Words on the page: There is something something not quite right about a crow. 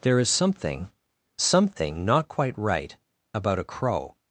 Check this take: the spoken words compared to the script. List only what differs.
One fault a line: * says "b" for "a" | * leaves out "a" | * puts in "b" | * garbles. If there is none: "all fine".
all fine